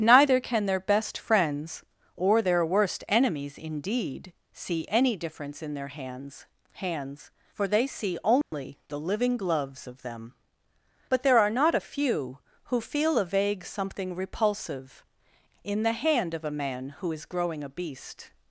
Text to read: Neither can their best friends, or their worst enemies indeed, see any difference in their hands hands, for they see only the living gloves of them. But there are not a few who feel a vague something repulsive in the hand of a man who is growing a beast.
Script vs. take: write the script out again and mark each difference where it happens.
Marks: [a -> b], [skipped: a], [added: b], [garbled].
Neither can their best friends, or their worst enemies indeed, see any difference in their hands hands, for they see only the living gloves of them. But there are not a few who feel a vague something repulsive in the hand of a man who is growing a beast.